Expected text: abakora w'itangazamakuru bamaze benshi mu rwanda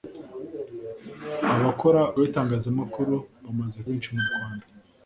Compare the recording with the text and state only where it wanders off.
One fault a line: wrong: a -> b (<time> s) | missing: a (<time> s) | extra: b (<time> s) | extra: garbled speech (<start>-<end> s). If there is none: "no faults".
no faults